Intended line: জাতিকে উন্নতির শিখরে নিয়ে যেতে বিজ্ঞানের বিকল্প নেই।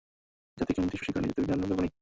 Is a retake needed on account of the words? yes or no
no